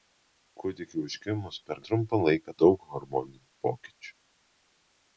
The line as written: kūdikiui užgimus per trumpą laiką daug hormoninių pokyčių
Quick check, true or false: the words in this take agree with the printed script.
true